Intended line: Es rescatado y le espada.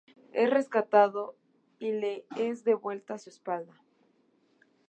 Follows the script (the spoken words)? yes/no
no